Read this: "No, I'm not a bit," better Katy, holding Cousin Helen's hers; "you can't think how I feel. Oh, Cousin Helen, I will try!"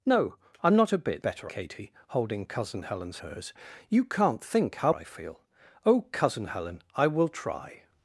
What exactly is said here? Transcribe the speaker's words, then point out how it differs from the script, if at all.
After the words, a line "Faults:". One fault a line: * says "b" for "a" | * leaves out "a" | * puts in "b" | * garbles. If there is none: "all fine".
"No, I'm not a bit," better Katy, holding Cousin Helen's hers; "you can't think how I feel. Oh, Cousin Helen, I will try!"
Faults:
all fine